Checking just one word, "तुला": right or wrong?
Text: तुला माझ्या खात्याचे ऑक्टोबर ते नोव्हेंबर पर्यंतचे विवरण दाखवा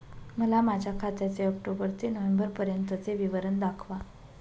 wrong